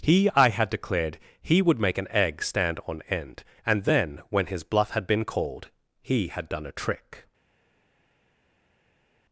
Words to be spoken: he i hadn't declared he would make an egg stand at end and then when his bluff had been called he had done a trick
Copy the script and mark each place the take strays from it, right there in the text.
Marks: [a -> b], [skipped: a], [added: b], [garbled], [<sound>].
he i [hadn't -> had] declared he would make an egg stand [at -> on] end and then when his bluff had been called he had done a trick